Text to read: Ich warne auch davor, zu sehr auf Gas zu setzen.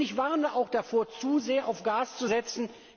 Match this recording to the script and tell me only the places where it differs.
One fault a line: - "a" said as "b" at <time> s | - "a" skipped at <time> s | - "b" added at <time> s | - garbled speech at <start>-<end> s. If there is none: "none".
none